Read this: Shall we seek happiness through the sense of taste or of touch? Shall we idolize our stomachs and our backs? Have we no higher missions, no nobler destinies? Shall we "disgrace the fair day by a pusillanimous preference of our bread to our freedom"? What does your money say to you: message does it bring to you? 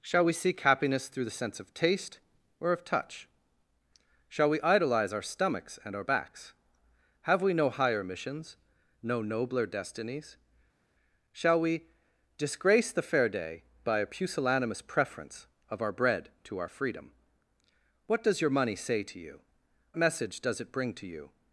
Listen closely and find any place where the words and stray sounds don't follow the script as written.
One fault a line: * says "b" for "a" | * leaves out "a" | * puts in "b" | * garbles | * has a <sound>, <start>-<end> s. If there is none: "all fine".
all fine